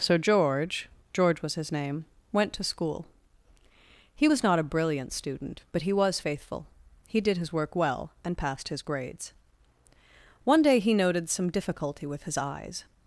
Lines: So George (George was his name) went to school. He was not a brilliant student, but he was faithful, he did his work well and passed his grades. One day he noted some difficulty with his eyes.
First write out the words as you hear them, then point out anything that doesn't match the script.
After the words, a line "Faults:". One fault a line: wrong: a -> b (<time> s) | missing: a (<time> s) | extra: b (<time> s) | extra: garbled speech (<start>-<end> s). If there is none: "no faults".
So George (George was his name) went to school. He was not a brilliant student, but he was faithful, he did his work well and passed his grades. One day he noted some difficulty with his eyes.
Faults:
no faults